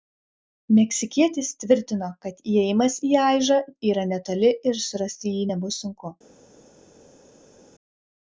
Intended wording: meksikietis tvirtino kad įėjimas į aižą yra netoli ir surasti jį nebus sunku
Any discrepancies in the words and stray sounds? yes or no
no